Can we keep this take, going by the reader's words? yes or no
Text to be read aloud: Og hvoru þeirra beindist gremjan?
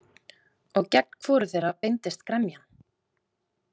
no